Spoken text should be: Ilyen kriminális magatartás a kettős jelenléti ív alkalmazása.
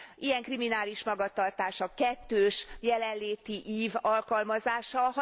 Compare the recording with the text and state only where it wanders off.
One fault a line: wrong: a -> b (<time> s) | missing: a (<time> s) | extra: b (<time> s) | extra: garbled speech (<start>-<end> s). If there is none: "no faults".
no faults